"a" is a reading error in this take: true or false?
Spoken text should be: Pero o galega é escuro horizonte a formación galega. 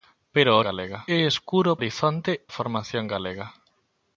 false